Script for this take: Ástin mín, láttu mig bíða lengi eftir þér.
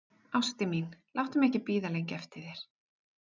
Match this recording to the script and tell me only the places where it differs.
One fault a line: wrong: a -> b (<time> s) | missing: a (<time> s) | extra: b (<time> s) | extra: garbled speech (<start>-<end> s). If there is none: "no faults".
extra: ekki (1.5 s)